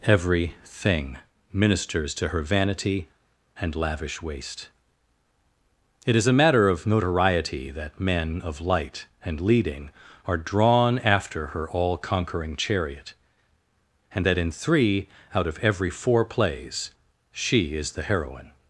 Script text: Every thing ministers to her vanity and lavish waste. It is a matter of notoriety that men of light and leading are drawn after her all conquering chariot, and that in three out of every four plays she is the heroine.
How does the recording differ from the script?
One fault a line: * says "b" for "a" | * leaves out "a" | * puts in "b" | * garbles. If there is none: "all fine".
all fine